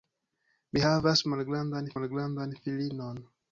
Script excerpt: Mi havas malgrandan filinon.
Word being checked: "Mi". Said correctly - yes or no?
yes